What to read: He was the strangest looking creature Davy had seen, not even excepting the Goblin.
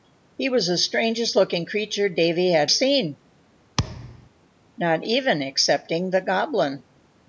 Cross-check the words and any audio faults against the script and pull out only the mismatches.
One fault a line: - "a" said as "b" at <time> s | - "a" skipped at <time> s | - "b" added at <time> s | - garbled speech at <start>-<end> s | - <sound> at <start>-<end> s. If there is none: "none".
- thud at 3.8-4.3 s